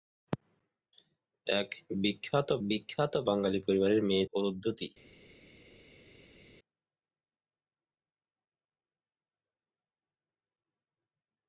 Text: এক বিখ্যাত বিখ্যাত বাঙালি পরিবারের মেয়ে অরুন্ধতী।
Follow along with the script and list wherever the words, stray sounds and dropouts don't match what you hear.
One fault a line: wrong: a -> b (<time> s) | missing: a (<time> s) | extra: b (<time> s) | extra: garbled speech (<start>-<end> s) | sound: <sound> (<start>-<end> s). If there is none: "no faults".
no faults